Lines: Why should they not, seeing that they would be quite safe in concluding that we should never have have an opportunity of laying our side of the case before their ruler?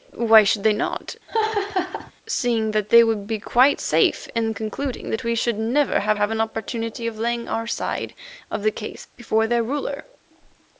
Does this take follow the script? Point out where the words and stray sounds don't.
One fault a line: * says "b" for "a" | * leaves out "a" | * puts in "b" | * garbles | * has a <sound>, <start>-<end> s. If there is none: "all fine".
* has a laugh, 1.3-2.1 s